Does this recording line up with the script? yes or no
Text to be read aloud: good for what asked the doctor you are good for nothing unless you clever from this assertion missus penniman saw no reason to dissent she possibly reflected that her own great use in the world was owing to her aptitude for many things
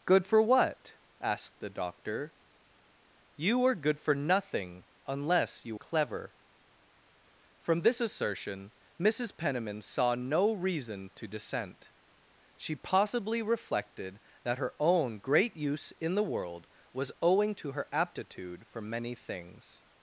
yes